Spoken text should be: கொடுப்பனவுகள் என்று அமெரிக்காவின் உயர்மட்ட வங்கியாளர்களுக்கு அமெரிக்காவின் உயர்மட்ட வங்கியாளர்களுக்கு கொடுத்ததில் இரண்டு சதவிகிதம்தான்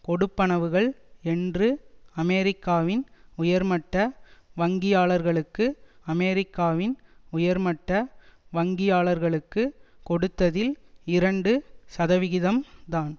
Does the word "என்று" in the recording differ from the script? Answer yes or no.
no